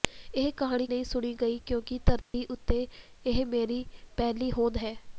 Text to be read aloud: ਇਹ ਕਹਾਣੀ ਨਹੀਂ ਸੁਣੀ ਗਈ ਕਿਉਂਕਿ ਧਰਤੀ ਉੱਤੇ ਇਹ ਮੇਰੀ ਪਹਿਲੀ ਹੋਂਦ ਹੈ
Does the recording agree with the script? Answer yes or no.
yes